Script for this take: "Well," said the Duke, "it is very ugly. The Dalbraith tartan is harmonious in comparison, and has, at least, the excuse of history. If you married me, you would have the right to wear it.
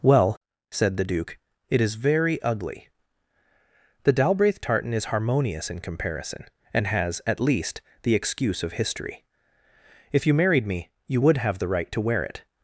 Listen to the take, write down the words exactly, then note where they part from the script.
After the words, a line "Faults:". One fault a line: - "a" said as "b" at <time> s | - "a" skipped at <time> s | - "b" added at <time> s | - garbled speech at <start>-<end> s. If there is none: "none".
"Well," said the Duke, "it is very ugly. The Dalbraith tartan is harmonious in comparison, and has, at least, the excuse of history. If you married me, you would have the right to wear it.
Faults:
none